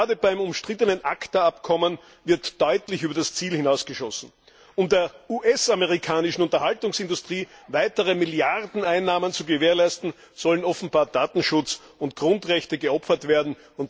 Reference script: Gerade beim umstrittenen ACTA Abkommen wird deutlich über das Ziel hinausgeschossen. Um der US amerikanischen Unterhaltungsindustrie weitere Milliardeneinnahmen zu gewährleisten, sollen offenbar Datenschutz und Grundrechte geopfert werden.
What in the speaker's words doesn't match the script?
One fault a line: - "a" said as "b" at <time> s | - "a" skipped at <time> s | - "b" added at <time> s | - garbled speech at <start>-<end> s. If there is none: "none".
none